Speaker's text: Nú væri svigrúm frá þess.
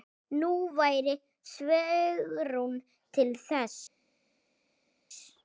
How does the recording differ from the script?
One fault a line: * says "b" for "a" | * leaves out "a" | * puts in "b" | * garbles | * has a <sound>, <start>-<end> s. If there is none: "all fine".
* says "til" for "frá"